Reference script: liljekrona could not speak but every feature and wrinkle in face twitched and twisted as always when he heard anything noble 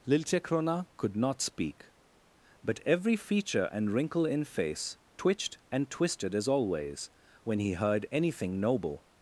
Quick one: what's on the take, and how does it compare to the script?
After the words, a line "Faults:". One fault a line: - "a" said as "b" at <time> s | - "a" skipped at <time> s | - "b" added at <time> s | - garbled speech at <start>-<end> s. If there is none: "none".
liljekrona could not speak but every feature and wrinkle in face twitched and twisted as always when he heard anything noble
Faults:
none